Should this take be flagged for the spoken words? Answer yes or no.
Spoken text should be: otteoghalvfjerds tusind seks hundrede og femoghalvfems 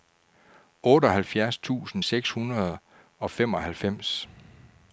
no